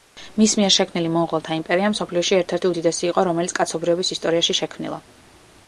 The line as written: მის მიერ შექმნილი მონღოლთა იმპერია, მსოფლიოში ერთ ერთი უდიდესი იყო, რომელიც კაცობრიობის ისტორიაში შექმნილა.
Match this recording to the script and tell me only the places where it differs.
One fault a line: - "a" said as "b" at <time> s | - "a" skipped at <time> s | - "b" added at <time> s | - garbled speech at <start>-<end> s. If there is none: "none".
none